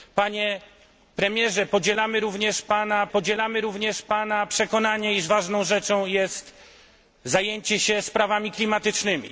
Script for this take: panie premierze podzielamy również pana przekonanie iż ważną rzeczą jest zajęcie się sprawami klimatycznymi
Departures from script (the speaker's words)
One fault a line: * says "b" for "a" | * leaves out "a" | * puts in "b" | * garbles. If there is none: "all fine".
* puts in "podzielamy również pana"